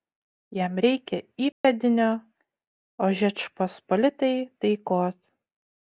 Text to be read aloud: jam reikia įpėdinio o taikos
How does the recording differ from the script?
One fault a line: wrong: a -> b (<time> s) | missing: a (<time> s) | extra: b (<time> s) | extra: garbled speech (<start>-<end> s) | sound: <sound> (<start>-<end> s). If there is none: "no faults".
sound: dropout (1.5-1.6 s)
extra: žečpospolitai (3.2 s)